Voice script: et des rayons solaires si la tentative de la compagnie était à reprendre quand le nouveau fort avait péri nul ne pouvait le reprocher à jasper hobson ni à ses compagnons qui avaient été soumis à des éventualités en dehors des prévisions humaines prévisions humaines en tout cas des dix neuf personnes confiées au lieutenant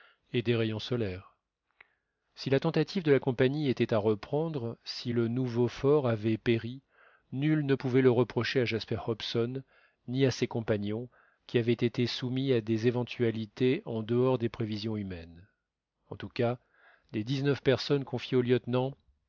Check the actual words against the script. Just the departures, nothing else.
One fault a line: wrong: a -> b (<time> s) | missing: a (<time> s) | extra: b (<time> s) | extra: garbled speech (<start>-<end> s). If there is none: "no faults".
wrong: quand -> si (4.8 s)
missing: prévisions humaines (15.5 s)